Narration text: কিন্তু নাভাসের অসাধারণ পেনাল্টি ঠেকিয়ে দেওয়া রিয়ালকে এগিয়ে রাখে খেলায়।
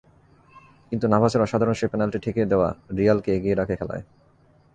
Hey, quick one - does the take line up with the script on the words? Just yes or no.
no